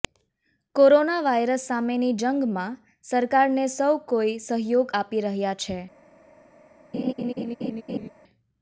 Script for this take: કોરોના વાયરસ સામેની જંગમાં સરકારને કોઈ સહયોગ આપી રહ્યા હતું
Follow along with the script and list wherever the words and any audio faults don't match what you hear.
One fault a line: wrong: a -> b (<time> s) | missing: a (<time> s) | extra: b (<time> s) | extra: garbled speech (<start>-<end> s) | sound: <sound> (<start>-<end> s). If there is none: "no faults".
extra: સૌ (3.8 s)
wrong: હતું -> છે (5.6 s)
sound: laugh (6.9-8.1 s)